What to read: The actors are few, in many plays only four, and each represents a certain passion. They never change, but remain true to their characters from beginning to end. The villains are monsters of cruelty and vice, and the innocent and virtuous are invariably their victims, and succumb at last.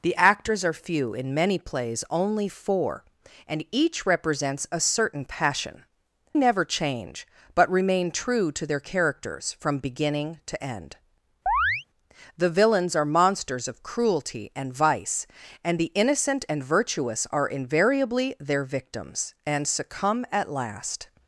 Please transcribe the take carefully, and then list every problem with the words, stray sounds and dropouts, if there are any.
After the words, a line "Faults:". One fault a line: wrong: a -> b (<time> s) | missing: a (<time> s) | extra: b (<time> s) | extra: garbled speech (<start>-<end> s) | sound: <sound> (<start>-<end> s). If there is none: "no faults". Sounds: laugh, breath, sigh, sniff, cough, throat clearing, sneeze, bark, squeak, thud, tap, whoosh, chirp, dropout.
The actors are few, in many plays only four, and each represents a certain passion. Never change, but remain true to their characters from beginning to end. The villains are monsters of cruelty and vice, and the innocent and virtuous are invariably their victims, and succumb at last.
Faults:
missing: They (5.8 s)
sound: chirp (11.5-11.8 s)